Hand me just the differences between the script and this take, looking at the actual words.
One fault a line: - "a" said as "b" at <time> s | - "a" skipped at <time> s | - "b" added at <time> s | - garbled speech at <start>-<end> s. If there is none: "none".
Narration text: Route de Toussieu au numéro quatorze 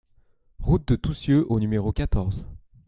none